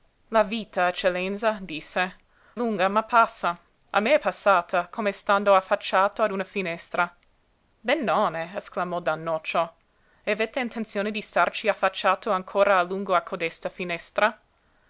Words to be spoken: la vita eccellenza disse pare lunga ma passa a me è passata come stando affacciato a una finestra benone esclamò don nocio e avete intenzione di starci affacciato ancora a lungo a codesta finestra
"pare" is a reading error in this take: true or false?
true